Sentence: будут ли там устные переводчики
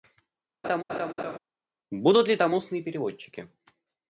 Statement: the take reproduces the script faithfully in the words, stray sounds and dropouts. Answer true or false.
false